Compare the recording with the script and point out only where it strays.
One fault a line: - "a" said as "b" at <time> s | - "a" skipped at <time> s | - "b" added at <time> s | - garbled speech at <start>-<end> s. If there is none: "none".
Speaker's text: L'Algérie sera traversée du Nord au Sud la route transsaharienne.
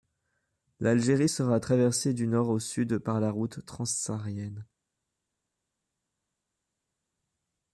- "par" added at 3.0 s